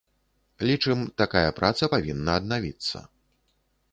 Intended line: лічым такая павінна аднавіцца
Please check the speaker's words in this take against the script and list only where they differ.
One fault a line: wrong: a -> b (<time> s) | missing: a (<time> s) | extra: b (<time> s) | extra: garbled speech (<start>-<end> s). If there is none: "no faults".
extra: праца (1.6 s)